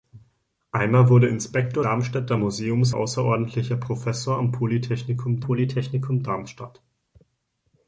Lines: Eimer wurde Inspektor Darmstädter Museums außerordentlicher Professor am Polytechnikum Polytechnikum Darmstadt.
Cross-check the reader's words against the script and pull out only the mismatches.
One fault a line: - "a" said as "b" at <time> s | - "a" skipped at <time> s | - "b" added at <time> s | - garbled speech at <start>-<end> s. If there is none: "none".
none